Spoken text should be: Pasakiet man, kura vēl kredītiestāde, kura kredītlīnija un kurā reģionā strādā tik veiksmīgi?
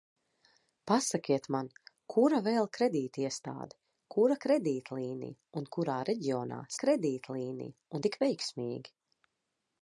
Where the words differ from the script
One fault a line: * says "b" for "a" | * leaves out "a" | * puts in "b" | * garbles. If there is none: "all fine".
* says "kredītlīnija" for "strādā"